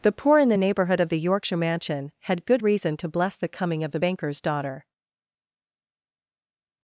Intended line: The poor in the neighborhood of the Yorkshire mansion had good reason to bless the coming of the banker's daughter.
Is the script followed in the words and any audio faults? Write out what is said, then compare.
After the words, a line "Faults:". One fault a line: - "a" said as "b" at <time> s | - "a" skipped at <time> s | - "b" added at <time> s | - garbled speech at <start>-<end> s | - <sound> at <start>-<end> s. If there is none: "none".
The poor in the neighborhood of the Yorkshire mansion had good reason to bless the coming of the banker's daughter.
Faults:
none